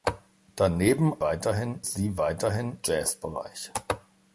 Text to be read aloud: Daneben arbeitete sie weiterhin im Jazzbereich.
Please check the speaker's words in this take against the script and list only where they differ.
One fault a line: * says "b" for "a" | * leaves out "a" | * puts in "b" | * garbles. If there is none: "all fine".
* says "weiterhin" for "arbeitete"
* leaves out "im"